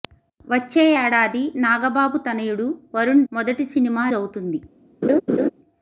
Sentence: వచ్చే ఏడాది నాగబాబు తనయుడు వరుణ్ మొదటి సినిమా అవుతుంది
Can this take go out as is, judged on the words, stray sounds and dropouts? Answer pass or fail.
fail